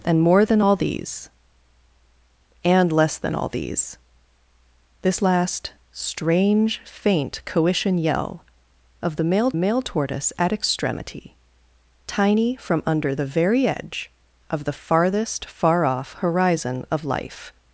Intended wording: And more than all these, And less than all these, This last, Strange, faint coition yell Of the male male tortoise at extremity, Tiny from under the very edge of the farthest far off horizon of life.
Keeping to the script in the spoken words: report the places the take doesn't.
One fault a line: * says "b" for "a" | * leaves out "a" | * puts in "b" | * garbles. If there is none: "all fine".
all fine